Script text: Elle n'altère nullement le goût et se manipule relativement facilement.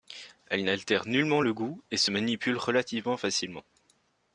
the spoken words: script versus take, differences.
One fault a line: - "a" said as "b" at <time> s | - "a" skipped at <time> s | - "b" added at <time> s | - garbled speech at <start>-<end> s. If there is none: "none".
none